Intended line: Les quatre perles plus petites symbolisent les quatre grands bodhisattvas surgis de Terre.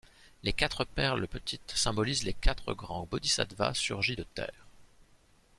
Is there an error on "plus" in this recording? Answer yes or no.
yes